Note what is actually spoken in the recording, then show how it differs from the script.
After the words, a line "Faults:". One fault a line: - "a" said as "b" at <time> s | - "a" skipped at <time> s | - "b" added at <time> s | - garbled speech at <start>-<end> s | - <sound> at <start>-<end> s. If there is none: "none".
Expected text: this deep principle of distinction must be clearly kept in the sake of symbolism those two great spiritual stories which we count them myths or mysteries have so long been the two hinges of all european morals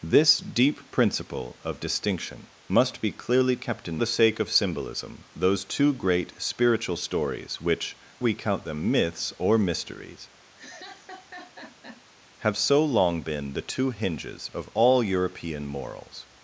this deep principle of distinction must be clearly kept in the sake of symbolism those two great spiritual stories which we count them myths or mysteries have so long been the two hinges of all european morals
Faults:
- laugh at 10.6-12.0 s